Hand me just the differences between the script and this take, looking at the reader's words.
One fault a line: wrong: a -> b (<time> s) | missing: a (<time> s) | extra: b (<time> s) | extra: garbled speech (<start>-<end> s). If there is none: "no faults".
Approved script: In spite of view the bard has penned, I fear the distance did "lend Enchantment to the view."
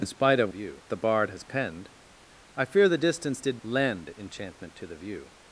no faults